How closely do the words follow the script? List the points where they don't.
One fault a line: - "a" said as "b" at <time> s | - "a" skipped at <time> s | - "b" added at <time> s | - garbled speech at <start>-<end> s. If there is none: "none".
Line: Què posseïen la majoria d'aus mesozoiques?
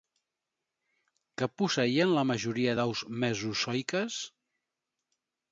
none